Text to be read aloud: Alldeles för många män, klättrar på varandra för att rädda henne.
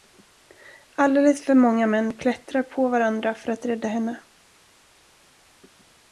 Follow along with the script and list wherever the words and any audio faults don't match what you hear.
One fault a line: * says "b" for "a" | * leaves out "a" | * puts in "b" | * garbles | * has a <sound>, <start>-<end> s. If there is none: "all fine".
all fine